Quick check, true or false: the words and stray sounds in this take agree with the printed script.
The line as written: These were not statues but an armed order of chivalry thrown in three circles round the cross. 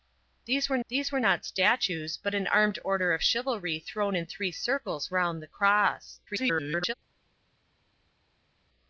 false